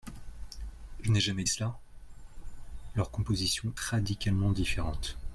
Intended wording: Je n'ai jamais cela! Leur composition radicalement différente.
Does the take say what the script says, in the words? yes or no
yes